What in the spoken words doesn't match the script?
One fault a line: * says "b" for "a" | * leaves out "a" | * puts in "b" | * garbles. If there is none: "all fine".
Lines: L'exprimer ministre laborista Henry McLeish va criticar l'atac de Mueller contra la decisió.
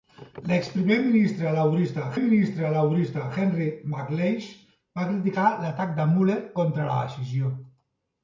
* puts in "ministre laborista"